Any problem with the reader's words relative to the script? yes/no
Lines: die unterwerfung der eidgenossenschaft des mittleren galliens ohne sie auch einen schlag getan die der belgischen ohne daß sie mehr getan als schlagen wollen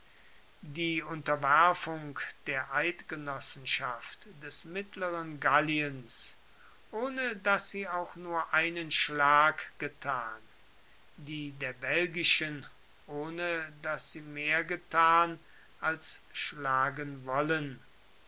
yes